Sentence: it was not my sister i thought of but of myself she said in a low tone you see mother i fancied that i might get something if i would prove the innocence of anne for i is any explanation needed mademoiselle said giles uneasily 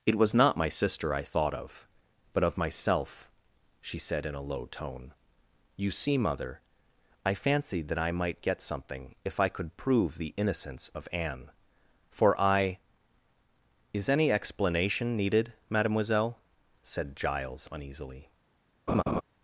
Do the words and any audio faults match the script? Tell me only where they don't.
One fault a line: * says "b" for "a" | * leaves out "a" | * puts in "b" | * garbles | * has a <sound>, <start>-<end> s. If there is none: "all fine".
* says "could" for "would"
* has a laugh, 18.9-19.2 s